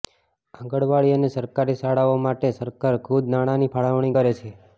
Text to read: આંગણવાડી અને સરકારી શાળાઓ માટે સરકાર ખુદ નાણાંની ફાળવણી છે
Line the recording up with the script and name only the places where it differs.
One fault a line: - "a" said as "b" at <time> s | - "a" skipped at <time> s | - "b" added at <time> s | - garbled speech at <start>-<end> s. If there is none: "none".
- "કરે" added at 4.1 s